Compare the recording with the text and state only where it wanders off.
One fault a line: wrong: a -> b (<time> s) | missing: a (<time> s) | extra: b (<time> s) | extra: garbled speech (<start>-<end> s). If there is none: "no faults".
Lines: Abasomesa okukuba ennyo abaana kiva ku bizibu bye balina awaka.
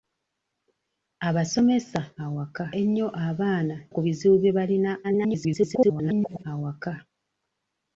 wrong: okukuba -> awaka (2.2 s)
missing: kiva (3.7 s)
extra: garbled speech (5.0-6.4 s)